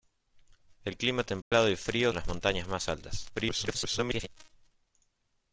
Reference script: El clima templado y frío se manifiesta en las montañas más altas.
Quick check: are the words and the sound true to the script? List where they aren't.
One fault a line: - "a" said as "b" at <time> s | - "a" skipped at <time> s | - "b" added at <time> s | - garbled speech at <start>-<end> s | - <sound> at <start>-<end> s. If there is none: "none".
- dropout at 1.4-1.5 s
- "se manifiesta" skipped at 2.1 s
- garbled speech at 3.3-4.3 s